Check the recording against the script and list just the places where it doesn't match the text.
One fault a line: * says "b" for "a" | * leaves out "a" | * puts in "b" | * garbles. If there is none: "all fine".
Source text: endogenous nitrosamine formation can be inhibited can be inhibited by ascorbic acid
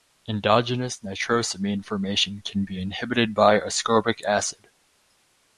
* leaves out "can be inhibited"